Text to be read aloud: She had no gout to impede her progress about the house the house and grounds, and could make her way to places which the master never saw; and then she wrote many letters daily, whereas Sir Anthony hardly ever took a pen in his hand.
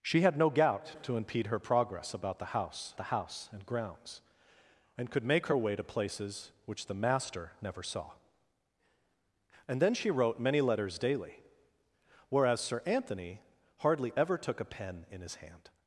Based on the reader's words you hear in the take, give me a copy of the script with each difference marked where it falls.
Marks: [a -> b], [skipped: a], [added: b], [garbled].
She had no gout to impede her progress about the house the house and grounds, and could make her way to places which the master never saw; and then she wrote many letters daily, whereas Sir Anthony hardly ever took a pen in his hand.